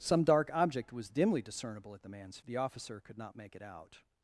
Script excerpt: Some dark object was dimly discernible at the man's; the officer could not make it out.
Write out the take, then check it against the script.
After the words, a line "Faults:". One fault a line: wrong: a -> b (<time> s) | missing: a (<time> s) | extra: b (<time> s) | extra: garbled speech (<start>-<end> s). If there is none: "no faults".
Some dark object was dimly discernible at the man's; the officer could not make it out.
Faults:
no faults